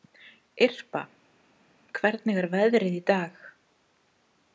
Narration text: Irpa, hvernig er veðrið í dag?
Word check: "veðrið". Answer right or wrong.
right